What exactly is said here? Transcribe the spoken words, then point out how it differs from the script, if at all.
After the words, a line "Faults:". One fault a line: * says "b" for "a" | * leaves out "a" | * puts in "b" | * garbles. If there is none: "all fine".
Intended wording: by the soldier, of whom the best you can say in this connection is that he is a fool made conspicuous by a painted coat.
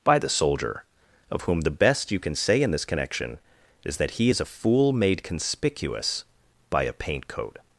by the soldier, of whom the best you can say in this connection is that he is a fool made conspicuous by a paint coat.
Faults:
* says "paint" for "painted"